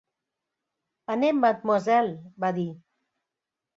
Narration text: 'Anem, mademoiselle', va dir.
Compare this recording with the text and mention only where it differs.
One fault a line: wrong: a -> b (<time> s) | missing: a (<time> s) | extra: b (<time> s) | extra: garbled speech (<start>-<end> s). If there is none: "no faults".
no faults